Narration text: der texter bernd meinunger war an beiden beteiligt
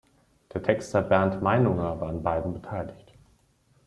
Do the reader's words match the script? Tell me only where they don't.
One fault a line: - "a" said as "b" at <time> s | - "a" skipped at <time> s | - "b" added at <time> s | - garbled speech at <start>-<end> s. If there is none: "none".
none